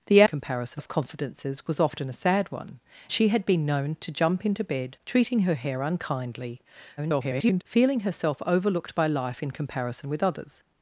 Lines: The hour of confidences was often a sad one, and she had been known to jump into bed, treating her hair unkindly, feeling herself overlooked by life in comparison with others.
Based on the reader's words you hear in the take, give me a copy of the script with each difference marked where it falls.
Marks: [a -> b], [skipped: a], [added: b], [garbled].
The [hour -> comparison] of confidences was often a sad one, [skipped: and] she had been known to jump into bed, treating her hair unkindly, [garbled] feeling herself overlooked by life in comparison with others.